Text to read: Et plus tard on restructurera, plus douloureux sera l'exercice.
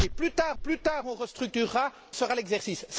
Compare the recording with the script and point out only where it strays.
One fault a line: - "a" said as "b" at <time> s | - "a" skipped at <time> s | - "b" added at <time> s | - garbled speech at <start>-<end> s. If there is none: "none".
- "plus tard" added at 0.5 s
- "plus douloureux" skipped at 1.9 s